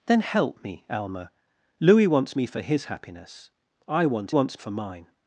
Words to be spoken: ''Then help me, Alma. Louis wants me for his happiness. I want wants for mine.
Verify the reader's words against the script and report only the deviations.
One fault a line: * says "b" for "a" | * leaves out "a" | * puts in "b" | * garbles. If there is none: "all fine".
all fine